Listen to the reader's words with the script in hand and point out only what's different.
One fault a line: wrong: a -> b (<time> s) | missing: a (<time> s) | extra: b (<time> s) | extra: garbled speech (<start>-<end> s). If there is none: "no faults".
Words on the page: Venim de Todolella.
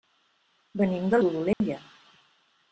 no faults